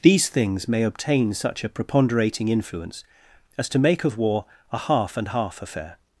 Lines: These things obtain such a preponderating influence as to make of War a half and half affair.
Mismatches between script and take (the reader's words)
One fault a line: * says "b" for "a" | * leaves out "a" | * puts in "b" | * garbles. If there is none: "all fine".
* puts in "may"